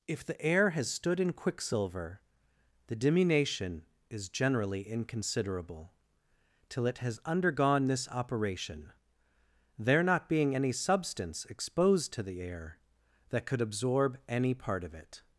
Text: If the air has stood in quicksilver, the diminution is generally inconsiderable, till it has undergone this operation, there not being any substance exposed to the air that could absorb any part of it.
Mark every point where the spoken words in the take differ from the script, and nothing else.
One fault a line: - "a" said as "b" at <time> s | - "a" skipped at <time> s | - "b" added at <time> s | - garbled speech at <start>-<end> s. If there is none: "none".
none